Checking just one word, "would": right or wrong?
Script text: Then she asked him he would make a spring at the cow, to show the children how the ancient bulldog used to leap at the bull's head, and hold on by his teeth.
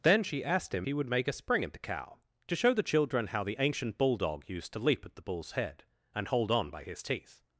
right